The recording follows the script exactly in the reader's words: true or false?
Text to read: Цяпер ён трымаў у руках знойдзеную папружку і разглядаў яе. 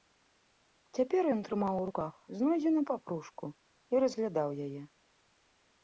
true